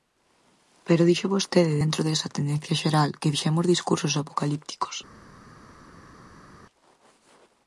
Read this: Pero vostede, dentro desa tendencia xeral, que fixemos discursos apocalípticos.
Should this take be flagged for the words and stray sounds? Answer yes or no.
yes